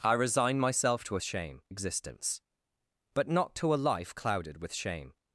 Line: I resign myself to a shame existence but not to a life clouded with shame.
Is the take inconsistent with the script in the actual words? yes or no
no